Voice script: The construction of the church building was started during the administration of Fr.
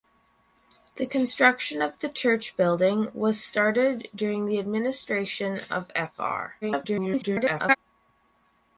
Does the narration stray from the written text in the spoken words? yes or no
yes